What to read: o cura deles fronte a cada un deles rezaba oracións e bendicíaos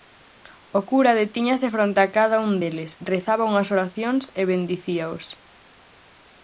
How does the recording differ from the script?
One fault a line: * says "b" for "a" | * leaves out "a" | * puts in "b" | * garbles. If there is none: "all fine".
* says "detíñase" for "deles"
* puts in "unhas"